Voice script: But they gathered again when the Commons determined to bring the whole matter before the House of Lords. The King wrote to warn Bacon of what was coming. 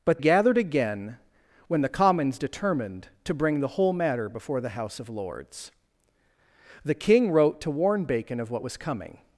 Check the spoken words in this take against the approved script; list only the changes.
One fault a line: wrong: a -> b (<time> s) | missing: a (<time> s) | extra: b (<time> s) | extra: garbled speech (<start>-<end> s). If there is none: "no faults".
missing: they (0.2 s)